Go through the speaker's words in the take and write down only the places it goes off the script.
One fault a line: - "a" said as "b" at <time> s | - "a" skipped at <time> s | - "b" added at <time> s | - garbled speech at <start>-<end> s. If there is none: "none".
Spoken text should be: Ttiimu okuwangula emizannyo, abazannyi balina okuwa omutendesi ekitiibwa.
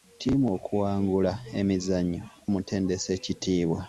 - "abazannyi balina okuwa" skipped at 2.2 s